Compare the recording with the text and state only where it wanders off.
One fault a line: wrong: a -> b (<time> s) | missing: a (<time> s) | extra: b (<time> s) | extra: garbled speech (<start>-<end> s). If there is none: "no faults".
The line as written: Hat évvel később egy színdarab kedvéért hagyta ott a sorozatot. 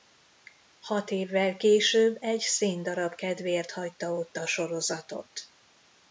no faults